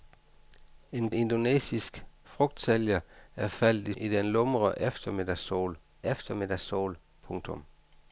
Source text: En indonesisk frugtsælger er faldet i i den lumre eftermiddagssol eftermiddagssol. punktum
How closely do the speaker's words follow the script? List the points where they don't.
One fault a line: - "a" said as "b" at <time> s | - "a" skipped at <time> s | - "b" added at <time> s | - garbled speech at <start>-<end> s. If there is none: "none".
none